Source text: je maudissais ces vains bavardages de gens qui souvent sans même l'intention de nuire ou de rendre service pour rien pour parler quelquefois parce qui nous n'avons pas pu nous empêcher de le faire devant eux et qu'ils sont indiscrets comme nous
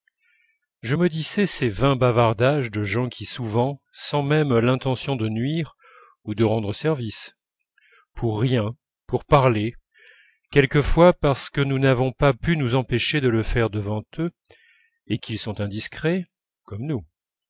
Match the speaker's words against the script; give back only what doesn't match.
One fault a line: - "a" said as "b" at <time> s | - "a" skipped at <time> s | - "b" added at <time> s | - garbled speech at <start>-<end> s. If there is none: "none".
- "qui" said as "que" at 11.5 s